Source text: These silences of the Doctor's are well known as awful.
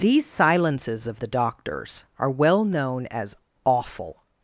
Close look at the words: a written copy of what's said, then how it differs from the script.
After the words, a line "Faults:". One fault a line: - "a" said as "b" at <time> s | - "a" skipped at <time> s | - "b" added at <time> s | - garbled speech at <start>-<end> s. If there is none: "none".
These silences of the Doctor's are well known as awful.
Faults:
none